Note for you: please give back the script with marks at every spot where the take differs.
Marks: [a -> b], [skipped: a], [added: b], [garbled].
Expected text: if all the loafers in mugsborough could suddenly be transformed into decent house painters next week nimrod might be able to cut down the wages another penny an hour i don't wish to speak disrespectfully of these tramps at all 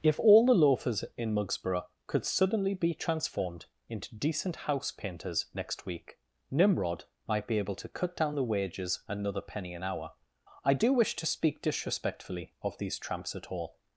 if all the loafers in mugsborough could suddenly be transformed into decent house painters next week nimrod might be able to cut down the wages another penny an hour i [don't -> do] wish to speak disrespectfully of these tramps at all